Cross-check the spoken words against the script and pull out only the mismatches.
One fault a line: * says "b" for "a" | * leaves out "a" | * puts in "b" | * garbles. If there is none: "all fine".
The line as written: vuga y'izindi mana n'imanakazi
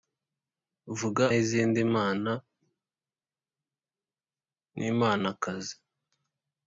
all fine